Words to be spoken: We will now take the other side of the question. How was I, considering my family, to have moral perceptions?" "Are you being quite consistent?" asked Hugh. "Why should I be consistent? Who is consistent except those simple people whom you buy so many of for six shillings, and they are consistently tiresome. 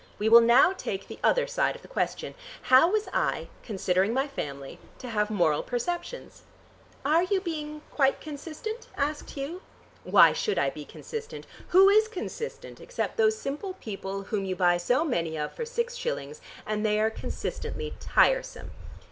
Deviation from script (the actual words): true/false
false